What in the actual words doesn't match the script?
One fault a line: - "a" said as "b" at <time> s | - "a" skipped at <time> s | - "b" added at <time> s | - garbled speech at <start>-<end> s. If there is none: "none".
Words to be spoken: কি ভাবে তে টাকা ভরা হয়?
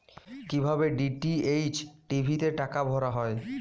- "ডি.টি.এইচ টি.ভি" added at 1.0 s